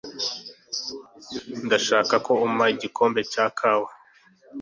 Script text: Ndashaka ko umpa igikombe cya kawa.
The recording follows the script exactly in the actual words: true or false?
true